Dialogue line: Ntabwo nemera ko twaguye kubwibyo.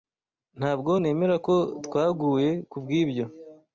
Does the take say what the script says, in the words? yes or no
yes